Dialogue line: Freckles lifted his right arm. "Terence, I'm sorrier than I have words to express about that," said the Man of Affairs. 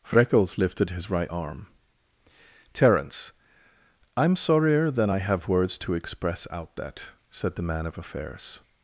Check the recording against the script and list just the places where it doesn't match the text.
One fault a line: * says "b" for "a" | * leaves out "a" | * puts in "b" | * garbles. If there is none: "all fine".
* says "out" for "about"